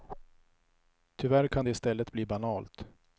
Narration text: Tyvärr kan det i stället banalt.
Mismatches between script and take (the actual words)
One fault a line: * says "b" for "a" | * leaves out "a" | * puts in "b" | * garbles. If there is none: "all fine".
* puts in "bli"